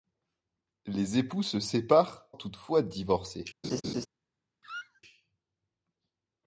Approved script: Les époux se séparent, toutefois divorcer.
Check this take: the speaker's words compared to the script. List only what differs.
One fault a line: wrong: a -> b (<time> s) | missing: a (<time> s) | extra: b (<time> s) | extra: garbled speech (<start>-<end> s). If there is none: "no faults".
no faults